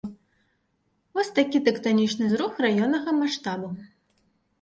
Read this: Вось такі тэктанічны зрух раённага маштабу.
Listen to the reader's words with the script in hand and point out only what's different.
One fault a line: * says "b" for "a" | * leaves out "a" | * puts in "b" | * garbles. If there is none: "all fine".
all fine